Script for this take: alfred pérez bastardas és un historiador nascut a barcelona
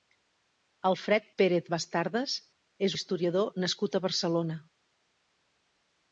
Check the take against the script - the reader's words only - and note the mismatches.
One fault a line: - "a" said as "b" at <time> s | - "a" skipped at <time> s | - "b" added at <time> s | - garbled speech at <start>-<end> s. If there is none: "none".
- "un" skipped at 2.9 s